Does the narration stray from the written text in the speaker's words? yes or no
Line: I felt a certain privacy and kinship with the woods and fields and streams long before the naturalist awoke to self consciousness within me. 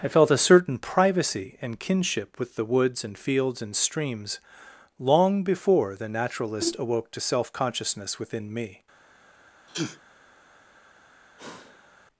no